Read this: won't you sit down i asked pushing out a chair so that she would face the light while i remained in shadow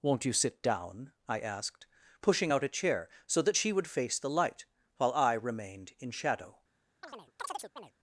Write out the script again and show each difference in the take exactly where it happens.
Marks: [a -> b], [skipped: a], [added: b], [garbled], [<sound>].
won't you sit down i asked pushing out a chair so that she would face the light while i remained in shadow [chirp]